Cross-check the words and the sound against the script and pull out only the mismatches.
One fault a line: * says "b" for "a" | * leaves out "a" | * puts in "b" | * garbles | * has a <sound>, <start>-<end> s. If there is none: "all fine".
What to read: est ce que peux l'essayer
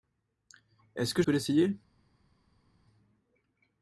all fine